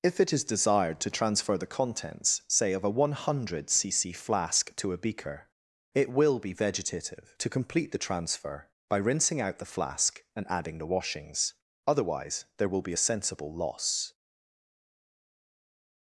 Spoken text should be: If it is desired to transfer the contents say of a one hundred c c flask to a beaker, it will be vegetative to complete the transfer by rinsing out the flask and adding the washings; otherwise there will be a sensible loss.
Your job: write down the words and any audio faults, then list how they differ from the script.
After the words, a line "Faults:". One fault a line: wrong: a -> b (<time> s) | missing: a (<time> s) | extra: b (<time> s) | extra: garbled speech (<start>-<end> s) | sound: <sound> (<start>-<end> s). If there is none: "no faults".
If it is desired to transfer the contents say of a one hundred c c flask to a beaker, it will be vegetative to complete the transfer by rinsing out the flask and adding the washings; otherwise there will be a sensible loss.
Faults:
no faults